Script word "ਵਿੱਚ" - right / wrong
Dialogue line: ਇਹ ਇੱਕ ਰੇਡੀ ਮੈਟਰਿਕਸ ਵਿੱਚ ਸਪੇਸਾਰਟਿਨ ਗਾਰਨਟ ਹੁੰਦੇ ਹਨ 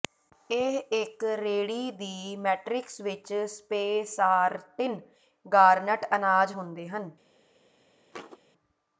right